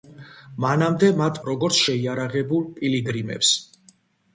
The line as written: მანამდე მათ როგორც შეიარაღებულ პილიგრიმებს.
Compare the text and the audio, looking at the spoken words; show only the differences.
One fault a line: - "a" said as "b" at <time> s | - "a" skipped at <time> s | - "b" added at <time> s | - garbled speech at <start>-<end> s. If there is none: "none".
none